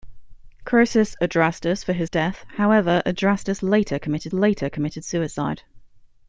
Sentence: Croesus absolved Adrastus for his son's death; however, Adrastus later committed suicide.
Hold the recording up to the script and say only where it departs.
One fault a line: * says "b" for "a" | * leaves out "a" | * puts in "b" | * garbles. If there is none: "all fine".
* leaves out "absolved"
* leaves out "son's"
* puts in "later committed"